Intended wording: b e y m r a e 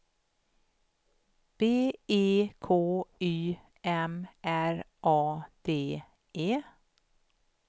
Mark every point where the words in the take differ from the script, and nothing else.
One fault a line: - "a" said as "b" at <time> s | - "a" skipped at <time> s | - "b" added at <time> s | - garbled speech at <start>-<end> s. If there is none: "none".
- "k" added at 2.6 s
- "d" added at 5.6 s